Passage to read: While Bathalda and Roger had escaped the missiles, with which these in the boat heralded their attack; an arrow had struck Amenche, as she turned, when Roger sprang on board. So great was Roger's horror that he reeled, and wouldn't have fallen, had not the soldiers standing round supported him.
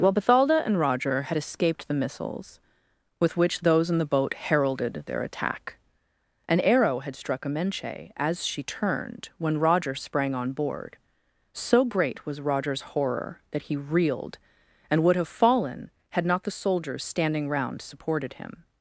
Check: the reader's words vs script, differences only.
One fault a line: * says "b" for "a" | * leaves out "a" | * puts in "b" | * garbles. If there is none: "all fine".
* says "those" for "these"
* says "would" for "wouldn't"